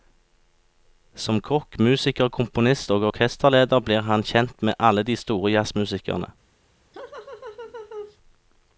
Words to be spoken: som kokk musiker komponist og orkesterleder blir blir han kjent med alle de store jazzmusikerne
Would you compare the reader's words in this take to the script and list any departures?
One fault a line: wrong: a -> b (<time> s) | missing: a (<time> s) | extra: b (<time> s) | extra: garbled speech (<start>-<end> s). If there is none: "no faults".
missing: blir (4.1 s)